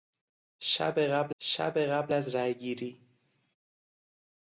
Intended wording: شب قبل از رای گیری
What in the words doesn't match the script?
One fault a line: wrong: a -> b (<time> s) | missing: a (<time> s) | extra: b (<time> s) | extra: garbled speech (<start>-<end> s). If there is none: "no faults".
extra: شب قبل (1.4 s)